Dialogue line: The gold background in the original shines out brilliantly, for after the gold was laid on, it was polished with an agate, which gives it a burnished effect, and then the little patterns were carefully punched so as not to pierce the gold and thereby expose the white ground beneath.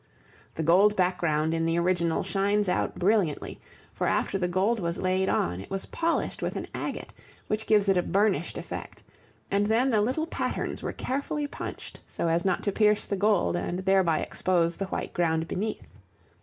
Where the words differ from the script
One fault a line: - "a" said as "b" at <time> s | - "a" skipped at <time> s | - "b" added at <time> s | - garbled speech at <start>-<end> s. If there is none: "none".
none